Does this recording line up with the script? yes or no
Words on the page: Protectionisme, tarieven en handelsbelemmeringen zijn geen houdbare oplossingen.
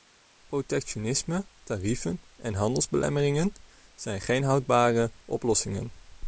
yes